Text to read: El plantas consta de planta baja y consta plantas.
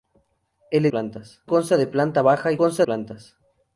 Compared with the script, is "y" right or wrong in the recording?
right